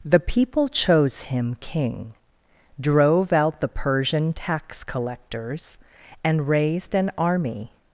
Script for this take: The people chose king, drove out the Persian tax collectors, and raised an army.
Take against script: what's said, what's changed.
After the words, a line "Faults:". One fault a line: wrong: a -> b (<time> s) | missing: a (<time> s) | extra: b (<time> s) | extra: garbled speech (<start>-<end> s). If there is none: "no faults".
The people chose him king, drove out the Persian tax collectors, and raised an army.
Faults:
extra: him (1.2 s)